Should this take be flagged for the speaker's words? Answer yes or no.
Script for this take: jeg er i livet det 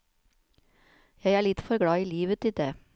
yes